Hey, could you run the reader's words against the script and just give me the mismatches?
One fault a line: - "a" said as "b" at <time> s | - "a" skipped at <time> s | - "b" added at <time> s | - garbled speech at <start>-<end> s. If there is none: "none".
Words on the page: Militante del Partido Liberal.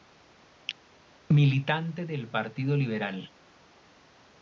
none